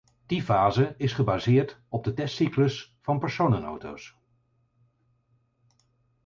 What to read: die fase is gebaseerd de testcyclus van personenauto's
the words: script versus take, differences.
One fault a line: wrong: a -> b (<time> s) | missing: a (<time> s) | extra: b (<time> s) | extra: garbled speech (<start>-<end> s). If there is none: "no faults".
extra: op (1.9 s)